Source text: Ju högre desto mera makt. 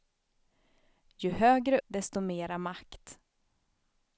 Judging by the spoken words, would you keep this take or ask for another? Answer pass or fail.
pass